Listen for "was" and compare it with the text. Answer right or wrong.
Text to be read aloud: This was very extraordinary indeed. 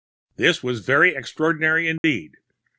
right